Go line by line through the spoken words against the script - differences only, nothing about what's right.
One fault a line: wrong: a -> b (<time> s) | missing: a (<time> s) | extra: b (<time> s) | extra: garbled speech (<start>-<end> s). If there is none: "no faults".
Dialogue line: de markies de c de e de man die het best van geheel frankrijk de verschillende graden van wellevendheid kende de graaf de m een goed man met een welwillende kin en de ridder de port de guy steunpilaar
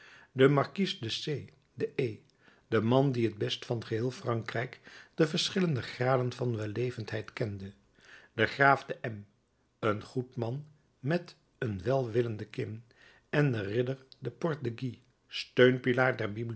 no faults